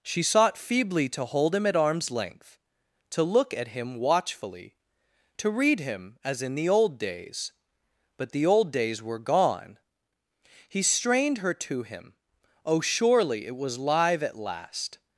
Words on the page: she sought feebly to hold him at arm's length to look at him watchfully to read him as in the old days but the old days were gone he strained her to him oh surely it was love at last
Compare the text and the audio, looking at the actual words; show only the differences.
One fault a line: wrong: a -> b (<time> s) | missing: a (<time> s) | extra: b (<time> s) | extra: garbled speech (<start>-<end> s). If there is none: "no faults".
wrong: love -> live (13.8 s)